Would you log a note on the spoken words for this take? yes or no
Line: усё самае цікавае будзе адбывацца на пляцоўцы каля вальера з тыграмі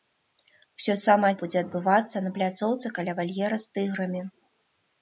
yes